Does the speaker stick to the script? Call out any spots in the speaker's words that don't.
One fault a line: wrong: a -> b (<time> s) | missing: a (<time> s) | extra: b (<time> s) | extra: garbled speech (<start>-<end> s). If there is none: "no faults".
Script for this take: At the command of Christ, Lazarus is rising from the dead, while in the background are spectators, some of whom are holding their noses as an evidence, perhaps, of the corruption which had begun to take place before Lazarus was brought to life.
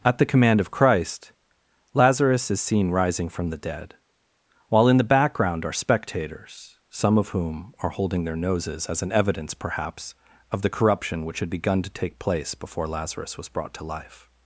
extra: seen (2.6 s)